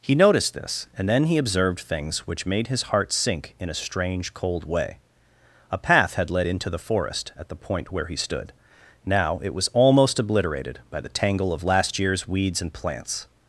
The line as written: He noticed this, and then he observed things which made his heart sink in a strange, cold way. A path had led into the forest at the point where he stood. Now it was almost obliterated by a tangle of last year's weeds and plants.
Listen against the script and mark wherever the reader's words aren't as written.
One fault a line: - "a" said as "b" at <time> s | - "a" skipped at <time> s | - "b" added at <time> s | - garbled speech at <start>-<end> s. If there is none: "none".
- "a" said as "the" at 11.0 s